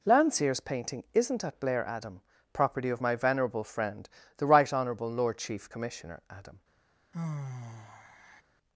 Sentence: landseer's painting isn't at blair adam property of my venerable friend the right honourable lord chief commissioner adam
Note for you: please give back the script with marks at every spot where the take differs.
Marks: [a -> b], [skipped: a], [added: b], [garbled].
landseer's painting isn't at blair adam property of my venerable friend the right honourable lord chief commissioner adam